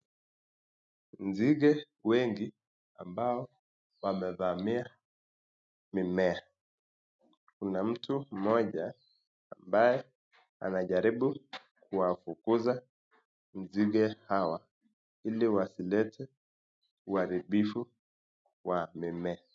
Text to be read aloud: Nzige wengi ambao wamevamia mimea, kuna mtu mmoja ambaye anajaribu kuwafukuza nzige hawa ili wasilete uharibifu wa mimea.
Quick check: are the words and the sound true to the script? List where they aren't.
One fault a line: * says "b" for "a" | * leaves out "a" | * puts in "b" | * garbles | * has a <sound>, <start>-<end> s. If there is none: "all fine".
all fine